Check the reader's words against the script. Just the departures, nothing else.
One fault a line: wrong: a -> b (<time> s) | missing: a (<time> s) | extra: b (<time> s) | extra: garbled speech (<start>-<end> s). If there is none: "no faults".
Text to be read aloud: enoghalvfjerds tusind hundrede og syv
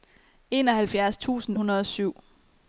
no faults